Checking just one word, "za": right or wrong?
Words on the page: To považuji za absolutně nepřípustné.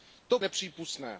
wrong